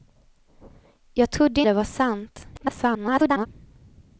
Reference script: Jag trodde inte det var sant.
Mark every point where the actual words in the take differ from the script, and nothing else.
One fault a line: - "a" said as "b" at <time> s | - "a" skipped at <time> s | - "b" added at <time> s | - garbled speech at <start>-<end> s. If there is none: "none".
- "inte" skipped at 1.6 s
- garbled speech at 2.5-3.5 s